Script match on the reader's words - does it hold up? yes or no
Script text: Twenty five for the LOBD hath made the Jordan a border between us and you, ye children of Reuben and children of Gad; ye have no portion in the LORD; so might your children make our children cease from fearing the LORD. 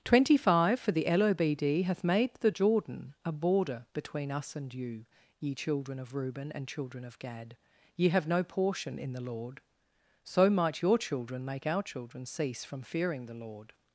yes